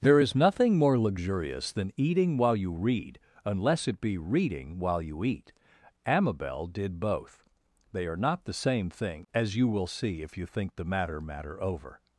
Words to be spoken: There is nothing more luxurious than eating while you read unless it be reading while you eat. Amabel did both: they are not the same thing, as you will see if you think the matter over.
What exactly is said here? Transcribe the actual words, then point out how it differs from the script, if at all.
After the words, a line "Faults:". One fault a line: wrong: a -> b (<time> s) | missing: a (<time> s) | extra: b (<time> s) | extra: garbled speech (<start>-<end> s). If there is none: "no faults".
There is nothing more luxurious than eating while you read unless it be reading while you eat. Amabel did both: they are not the same thing, as you will see if you think the matter matter over.
Faults:
extra: matter (11.2 s)